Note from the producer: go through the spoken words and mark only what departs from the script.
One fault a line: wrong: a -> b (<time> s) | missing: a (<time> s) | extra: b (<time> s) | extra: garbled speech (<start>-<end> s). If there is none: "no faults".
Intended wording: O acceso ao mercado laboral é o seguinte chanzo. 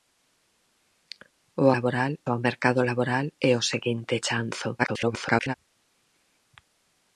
wrong: acceso -> laboral (1.8 s)
extra: garbled speech (4.8-5.5 s)